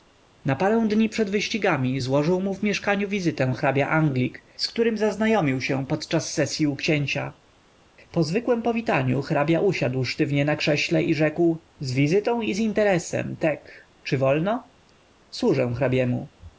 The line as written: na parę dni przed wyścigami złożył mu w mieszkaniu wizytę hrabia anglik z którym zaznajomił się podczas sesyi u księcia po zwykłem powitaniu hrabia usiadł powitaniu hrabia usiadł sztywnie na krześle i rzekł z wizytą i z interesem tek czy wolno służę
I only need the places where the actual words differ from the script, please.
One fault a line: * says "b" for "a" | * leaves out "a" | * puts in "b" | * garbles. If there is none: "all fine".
* leaves out "powitaniu hrabia usiadł"